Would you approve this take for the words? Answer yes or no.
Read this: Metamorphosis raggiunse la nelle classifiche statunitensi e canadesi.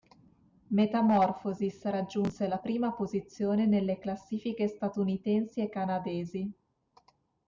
no